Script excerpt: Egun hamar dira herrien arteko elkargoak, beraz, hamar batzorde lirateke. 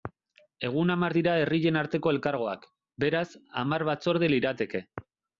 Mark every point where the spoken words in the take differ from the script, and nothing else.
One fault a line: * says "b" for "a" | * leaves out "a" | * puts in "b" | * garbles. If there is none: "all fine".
all fine